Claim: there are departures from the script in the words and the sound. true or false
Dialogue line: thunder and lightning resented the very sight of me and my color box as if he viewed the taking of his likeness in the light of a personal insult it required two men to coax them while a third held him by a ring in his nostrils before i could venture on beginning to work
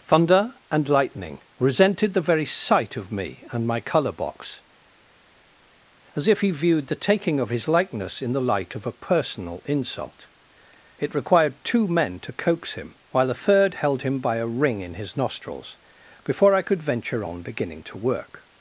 true